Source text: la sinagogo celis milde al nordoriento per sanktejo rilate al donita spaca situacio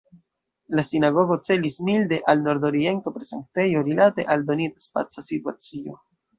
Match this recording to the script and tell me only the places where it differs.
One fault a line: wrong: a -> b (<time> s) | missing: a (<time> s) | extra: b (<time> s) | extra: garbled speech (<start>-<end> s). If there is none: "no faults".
no faults